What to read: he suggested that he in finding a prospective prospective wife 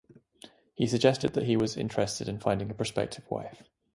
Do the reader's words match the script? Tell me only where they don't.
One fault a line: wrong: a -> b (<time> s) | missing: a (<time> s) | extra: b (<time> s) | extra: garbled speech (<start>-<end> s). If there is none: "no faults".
extra: was interested (1.6 s)
missing: prospective (3.3 s)